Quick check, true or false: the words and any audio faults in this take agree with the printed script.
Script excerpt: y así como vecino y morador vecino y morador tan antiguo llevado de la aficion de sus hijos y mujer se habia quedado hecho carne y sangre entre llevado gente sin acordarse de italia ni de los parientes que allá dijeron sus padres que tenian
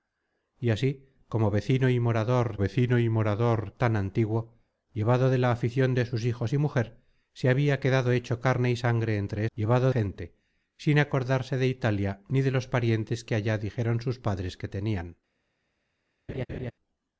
false